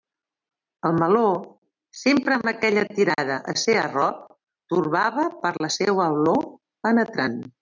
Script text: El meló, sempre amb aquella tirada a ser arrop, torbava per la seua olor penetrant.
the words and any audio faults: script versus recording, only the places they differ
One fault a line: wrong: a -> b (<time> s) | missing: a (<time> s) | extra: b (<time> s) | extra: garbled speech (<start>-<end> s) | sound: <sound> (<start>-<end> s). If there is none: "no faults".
no faults